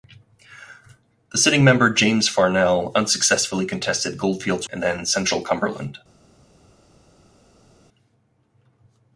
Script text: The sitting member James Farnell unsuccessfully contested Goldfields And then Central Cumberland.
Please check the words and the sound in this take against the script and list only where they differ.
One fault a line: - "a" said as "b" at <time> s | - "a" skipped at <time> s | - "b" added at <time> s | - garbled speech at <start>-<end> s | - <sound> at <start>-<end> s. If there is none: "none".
none